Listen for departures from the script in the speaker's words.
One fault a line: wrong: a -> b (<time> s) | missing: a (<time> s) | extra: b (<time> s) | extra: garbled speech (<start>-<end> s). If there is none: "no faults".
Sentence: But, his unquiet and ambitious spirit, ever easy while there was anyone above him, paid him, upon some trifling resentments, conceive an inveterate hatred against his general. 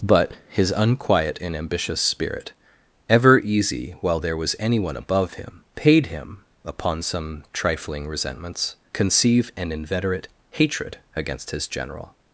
no faults